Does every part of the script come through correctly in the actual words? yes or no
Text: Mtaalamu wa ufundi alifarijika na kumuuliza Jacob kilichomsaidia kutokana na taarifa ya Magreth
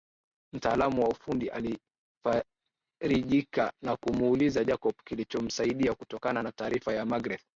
yes